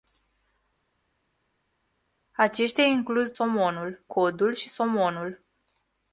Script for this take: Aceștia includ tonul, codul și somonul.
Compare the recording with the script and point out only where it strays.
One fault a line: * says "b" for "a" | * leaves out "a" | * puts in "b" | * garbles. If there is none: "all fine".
* says "somonul" for "tonul"